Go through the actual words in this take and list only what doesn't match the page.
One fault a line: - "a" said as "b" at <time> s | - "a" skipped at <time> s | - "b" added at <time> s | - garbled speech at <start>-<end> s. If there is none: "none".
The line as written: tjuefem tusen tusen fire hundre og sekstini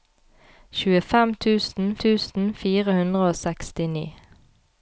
none